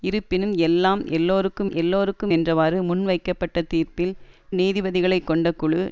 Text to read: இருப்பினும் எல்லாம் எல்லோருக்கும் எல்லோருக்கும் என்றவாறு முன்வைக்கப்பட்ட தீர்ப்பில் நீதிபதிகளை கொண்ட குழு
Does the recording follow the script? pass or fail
pass